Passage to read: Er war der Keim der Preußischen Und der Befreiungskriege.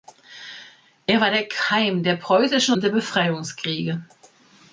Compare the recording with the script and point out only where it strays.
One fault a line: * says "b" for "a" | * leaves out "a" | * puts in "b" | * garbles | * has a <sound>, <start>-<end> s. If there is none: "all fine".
all fine